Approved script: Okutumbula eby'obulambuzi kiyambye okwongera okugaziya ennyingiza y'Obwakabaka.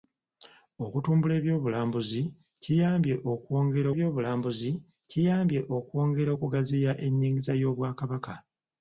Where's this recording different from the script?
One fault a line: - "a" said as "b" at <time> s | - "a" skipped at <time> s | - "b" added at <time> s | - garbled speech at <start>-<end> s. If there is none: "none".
- "eby'obulambuzi kiyambye okwongera" added at 3.9 s